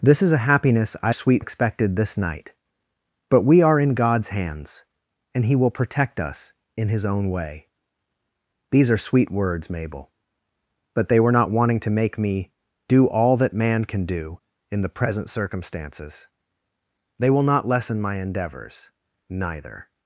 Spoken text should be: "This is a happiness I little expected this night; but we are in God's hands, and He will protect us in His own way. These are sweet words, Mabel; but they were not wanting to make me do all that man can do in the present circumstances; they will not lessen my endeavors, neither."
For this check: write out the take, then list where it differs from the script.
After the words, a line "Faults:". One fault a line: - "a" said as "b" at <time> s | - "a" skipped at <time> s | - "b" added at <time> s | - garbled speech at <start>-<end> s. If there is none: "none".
"This is a happiness I sweet expected this night; but we are in God's hands, and He will protect us in His own way. These are sweet words, Mabel; but they were not wanting to make me do all that man can do in the present circumstances; they will not lessen my endeavors, neither."
Faults:
- "little" said as "sweet" at 1.1 s